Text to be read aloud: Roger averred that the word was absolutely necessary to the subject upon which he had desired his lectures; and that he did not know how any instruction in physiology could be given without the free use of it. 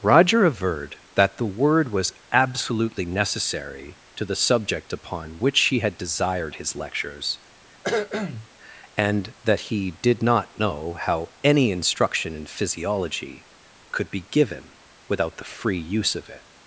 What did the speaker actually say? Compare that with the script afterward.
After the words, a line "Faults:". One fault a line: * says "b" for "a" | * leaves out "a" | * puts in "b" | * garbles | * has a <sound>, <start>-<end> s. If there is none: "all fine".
Roger averred that the word was absolutely necessary to the subject upon which he had desired his lectures; and that he did not know how any instruction in physiology could be given without the free use of it.
Faults:
* has a cough, 7.8-8.5 s